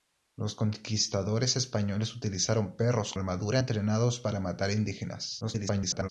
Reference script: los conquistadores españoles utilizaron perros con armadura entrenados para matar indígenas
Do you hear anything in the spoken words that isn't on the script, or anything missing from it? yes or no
yes